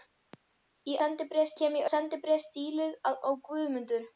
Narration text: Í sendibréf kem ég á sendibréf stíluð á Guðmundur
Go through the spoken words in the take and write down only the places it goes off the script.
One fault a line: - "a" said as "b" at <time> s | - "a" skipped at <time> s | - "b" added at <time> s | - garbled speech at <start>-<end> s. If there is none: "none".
none